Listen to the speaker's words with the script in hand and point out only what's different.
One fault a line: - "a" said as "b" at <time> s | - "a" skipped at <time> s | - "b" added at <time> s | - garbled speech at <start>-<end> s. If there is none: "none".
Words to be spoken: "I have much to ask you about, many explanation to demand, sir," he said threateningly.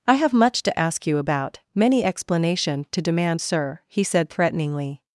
none